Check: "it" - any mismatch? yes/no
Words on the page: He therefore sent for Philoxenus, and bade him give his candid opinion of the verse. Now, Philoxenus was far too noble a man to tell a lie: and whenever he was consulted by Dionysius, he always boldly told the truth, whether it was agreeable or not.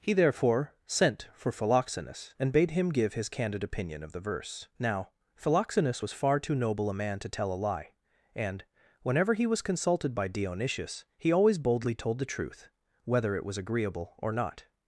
no